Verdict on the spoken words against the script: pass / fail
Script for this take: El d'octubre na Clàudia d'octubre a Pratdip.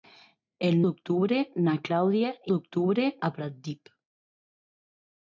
pass